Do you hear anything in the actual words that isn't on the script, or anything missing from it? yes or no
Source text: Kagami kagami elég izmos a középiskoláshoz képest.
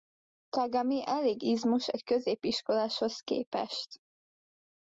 yes